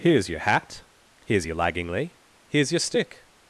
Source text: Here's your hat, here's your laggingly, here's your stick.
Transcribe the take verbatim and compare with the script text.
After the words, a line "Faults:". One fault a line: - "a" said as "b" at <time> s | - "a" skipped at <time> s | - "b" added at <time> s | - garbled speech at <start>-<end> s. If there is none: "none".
Here's your hat, here's your laggingly, here's your stick.
Faults:
none